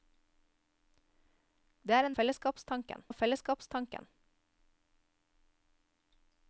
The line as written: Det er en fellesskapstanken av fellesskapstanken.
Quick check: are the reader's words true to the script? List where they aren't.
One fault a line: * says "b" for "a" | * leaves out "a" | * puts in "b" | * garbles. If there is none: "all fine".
all fine